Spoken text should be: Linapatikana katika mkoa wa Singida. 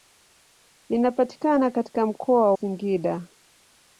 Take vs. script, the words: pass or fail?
fail